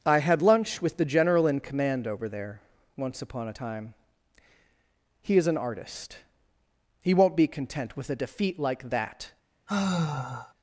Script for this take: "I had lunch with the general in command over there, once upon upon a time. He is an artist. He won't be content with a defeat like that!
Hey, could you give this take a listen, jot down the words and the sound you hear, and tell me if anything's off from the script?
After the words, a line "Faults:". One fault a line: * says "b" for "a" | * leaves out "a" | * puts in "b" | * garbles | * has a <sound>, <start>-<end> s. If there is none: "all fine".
"I had lunch with the general in command over there, once upon a time. He is an artist. He won't be content with a defeat like that!
Faults:
* leaves out "upon"
* has a sigh, 9.7-10.5 s